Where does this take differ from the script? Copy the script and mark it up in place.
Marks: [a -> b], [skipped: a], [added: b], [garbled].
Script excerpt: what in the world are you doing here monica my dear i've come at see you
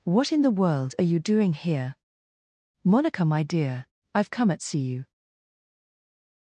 what in the world are you doing here monica my dear i've come at see you